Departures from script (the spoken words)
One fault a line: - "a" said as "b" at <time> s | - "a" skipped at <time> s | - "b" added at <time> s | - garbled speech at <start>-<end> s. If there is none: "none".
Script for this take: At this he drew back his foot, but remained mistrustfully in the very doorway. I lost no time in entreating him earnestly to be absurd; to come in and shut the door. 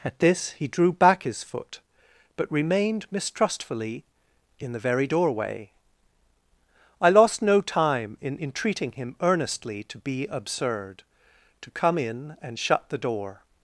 none